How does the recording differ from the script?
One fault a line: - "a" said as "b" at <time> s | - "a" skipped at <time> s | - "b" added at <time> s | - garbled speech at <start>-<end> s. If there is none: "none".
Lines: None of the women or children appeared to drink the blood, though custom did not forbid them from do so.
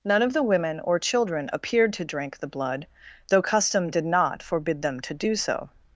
- "from" said as "to" at 5.0 s